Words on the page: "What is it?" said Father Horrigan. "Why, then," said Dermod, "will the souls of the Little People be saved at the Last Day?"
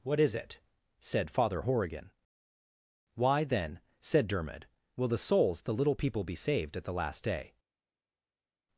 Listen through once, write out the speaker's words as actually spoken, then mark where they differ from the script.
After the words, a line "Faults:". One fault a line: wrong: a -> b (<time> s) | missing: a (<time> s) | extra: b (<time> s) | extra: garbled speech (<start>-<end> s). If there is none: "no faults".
"What is it?" said Father Horrigan. "Why, then," said Dermod, "will the souls the Little People be saved at the Last Day?"
Faults:
missing: of (5.6 s)